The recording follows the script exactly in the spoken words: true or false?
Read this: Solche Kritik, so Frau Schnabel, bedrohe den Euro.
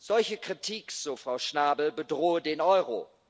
true